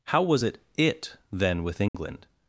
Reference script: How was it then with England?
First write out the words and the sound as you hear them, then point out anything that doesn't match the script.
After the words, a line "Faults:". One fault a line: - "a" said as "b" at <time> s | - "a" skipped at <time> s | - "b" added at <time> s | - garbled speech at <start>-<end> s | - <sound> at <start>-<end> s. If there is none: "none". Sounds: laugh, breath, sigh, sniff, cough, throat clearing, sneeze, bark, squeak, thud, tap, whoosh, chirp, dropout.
How was it it then with England?
Faults:
- "it" added at 0.8 s
- dropout at 1.9-1.9 s